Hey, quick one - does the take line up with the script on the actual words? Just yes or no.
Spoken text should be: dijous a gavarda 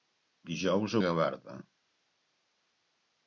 yes